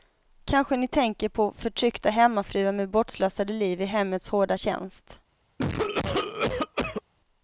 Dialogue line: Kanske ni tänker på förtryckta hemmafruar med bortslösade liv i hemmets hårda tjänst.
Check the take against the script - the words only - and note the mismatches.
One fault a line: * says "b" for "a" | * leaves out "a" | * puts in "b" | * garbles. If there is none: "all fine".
all fine